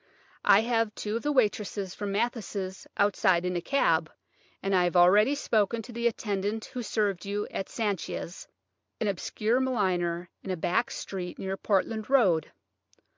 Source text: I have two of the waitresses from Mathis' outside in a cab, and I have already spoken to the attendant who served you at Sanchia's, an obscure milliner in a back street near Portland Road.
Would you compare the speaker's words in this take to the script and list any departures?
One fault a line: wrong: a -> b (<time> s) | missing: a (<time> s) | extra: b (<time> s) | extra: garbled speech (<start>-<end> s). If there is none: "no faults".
no faults